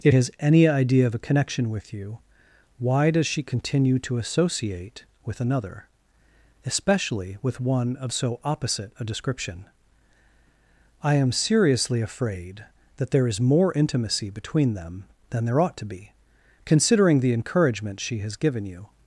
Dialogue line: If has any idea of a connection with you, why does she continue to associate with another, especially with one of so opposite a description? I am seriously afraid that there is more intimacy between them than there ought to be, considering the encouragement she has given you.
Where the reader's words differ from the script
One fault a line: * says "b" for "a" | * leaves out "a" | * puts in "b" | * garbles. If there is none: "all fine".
all fine